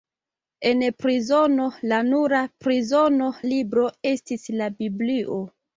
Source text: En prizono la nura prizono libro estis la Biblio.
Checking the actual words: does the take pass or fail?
pass